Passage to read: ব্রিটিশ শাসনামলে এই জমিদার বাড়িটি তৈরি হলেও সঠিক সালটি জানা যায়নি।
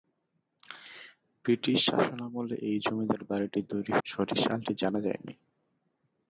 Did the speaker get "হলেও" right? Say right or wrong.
wrong